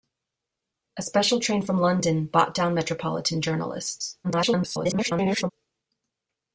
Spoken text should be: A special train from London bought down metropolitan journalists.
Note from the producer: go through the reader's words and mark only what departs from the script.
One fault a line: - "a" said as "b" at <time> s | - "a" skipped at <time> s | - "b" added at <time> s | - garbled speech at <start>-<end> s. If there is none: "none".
- garbled speech at 4.2-5.5 s